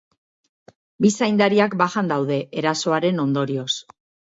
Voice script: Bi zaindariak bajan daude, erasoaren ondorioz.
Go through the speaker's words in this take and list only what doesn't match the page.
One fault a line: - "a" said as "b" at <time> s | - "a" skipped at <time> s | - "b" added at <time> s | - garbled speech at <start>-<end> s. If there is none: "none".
none